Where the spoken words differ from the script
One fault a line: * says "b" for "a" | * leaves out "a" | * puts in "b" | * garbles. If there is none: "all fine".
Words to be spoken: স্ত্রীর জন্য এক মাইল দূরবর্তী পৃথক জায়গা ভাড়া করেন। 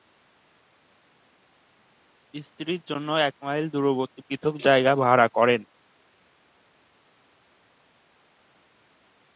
all fine